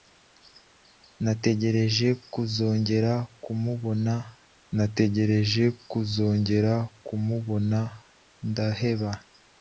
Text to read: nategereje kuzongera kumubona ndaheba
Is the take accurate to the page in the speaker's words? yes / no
no